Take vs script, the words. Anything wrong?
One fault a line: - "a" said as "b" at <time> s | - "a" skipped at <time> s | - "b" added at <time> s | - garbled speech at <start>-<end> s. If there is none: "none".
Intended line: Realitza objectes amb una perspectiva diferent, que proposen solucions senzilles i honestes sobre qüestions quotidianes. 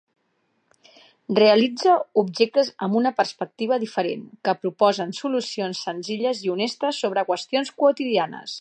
none